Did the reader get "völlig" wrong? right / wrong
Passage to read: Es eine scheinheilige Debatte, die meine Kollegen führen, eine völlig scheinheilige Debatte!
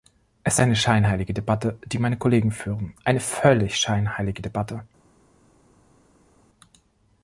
right